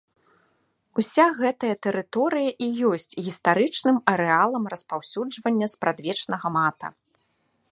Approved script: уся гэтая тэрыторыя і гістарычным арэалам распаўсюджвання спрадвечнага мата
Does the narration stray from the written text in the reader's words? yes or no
yes